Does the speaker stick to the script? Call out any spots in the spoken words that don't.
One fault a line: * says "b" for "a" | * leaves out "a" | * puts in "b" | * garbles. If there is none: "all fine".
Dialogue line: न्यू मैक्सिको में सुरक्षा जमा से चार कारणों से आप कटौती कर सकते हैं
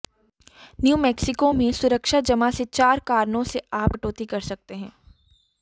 all fine